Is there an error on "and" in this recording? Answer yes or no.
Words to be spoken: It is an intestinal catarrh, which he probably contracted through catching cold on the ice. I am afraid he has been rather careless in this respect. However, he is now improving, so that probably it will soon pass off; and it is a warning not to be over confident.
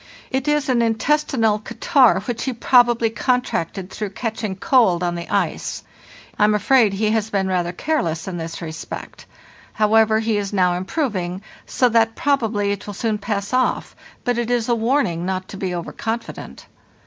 yes